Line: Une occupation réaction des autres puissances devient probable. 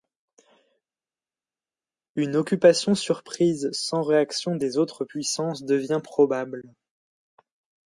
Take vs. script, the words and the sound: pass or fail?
fail